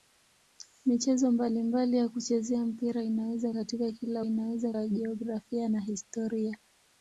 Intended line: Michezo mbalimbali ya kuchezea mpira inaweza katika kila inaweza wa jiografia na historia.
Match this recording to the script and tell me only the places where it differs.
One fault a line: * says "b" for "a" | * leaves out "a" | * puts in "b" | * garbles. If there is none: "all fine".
all fine